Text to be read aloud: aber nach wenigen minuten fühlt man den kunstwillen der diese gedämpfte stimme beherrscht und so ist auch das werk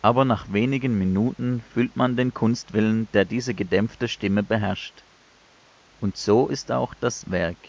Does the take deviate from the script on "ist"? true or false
false